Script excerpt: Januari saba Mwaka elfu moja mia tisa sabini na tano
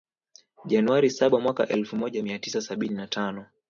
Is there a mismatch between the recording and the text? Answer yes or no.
no